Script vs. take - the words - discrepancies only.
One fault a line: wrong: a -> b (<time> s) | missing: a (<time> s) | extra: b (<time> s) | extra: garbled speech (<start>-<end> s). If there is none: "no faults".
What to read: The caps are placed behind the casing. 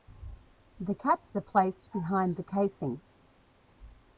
no faults